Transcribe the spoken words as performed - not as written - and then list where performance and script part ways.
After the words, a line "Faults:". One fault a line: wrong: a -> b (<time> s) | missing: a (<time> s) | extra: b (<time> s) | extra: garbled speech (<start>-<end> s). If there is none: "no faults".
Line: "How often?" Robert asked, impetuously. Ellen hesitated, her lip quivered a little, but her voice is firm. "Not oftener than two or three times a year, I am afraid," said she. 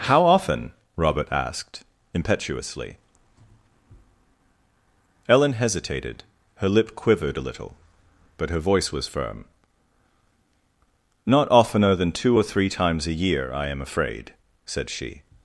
"How often?" Robert asked, impetuously. Ellen hesitated, her lip quivered a little, but her voice was firm. "Not oftener than two or three times a year, I am afraid," said she.
Faults:
wrong: is -> was (8.9 s)